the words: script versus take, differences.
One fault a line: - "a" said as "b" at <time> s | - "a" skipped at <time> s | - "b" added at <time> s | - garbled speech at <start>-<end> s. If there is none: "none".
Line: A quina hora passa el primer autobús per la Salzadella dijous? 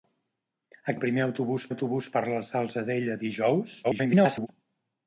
- "quina hora passa" skipped at 0.9 s
- "autobús" added at 1.7 s
- garbled speech at 3.8-4.5 s